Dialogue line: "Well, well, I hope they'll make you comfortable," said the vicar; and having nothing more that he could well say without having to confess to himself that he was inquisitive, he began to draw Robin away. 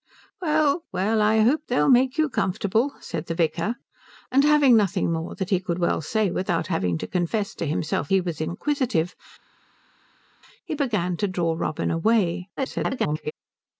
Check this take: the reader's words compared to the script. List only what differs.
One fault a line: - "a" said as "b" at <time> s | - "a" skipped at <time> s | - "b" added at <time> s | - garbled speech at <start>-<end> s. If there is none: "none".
- "that" skipped at 8.1 s
- garbled speech at 12.6-13.3 s